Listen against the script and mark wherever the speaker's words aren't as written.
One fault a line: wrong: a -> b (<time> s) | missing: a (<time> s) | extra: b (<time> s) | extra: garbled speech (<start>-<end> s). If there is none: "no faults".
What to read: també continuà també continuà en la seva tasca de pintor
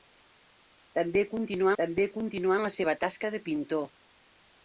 no faults